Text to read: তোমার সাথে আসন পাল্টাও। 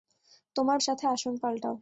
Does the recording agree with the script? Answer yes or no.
yes